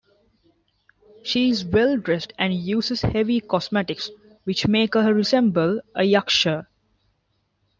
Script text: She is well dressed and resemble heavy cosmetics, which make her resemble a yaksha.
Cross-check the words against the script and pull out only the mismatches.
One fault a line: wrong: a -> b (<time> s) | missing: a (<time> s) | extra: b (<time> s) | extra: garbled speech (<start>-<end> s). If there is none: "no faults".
wrong: resemble -> uses (2.5 s)